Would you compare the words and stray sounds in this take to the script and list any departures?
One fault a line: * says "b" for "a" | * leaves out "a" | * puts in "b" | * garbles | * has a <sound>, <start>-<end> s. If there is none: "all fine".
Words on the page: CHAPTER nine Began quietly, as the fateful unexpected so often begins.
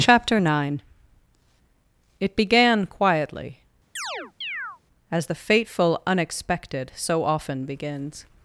* puts in "It"
* has a chirp, 4.0-4.8 s